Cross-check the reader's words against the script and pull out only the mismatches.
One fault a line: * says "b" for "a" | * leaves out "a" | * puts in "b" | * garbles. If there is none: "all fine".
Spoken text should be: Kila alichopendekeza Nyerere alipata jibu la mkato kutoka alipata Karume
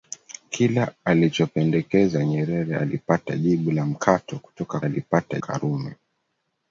all fine